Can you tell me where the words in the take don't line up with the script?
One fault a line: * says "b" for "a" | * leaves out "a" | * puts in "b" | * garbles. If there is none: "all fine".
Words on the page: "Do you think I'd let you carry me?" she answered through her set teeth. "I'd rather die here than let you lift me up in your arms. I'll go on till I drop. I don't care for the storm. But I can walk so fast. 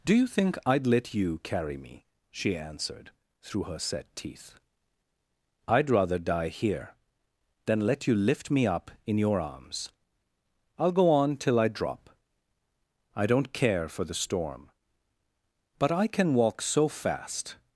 all fine